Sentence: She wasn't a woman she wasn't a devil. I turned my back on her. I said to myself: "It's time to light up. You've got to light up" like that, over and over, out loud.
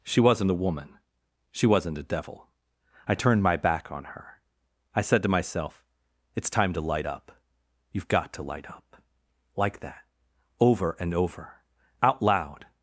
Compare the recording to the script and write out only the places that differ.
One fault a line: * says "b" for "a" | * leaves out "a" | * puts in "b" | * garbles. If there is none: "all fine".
all fine